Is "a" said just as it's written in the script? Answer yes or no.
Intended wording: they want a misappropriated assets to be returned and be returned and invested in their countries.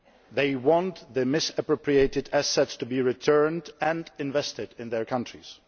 no